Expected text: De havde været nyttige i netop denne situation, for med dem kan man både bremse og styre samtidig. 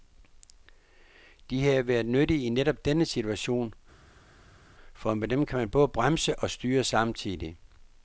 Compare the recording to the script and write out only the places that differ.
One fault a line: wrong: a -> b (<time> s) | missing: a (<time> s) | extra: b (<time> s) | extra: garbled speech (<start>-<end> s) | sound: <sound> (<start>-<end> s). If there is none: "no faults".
no faults